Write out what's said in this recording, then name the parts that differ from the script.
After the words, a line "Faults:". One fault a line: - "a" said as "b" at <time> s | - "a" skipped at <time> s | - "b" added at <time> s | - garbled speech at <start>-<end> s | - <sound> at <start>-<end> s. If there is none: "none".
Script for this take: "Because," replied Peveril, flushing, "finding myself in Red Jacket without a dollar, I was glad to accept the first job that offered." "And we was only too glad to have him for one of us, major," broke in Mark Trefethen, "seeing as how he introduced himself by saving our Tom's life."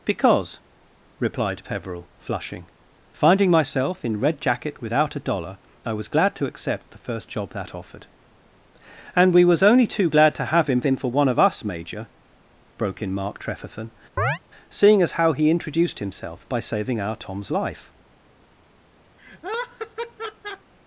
"Because," replied Peveril, flushing, "finding myself in Red Jacket without a dollar, I was glad to accept the first job that offered." "And we was only too glad to have him him for one of us, major," broke in Mark Trefethen, "seeing as how he introduced himself by saving our Tom's life."
Faults:
- "him" added at 10.9 s
- chirp at 14.2-14.4 s
- laugh at 19.2-20.7 s